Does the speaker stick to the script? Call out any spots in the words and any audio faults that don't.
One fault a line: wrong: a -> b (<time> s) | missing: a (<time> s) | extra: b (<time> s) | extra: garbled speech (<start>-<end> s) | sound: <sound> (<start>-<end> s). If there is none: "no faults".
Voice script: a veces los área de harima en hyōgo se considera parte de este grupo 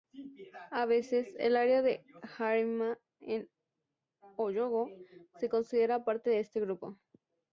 wrong: los -> el (1.4 s)